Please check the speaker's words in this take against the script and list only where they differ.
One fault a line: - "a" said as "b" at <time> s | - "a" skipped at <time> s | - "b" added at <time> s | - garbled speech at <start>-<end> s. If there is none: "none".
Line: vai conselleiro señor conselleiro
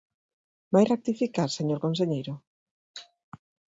- "conselleiro" said as "rectificar" at 0.9 s